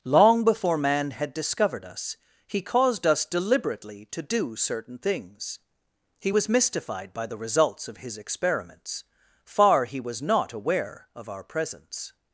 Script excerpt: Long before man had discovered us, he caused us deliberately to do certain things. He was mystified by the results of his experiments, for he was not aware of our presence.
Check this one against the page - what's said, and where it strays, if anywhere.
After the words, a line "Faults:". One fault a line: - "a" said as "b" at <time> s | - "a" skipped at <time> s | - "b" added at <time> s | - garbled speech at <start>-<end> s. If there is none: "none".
Long before man had discovered us, he caused us deliberately to do certain things. He was mystified by the results of his experiments, far he was not aware of our presence.
Faults:
- "for" said as "far" at 9.4 s